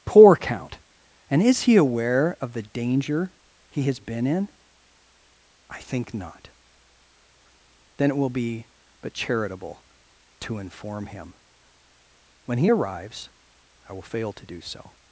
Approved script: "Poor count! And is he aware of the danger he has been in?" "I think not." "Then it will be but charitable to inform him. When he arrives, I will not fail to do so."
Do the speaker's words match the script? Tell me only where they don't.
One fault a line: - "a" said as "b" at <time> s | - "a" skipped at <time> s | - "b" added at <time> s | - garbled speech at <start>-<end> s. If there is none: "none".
- "not" skipped at 14.0 s